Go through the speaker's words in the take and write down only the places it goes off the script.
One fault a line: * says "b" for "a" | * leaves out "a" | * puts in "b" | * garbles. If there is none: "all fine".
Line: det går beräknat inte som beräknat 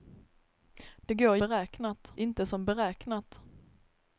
all fine